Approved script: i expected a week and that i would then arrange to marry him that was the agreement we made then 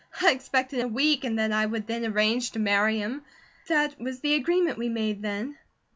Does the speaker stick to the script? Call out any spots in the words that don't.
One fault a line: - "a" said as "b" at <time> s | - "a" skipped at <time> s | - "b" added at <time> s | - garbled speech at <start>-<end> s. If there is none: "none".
none